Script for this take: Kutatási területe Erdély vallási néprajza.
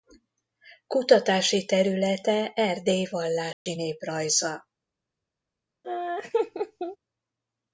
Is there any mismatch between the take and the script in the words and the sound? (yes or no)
yes